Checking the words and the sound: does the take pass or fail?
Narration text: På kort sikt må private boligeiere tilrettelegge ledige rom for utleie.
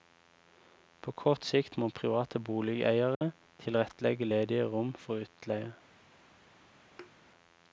fail